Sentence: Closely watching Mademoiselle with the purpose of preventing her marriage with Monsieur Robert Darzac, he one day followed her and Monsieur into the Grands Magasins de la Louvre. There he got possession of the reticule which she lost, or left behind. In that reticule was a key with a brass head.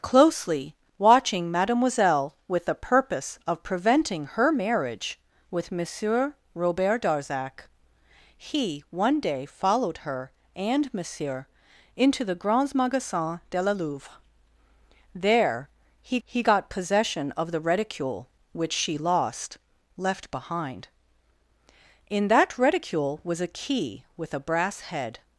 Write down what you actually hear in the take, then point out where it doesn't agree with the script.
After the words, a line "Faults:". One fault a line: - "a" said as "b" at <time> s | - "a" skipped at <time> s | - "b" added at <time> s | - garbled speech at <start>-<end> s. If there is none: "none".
Closely watching Mademoiselle with the purpose of preventing her marriage with Monsieur Robert Darzac, he one day followed her and Monsieur into the Grands Magasins de la Louvre. There he he got possession of the reticule which she lost, left behind. In that reticule was a key with a brass head.
Faults:
- "he" added at 16.2 s
- "or" skipped at 19.6 s